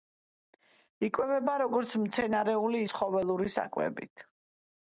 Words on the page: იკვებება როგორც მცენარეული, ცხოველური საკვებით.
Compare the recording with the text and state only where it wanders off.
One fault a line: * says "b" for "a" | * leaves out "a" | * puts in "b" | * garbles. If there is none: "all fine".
all fine